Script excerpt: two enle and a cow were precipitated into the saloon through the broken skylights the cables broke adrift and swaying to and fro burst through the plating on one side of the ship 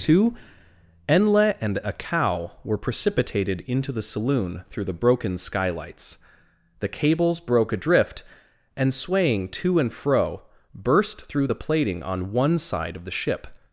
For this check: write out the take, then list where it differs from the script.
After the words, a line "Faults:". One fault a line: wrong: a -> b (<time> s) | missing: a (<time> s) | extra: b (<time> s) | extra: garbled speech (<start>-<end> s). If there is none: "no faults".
two enle and a cow were precipitated into the saloon through the broken skylights the cables broke adrift and swaying to and fro burst through the plating on one side of the ship
Faults:
no faults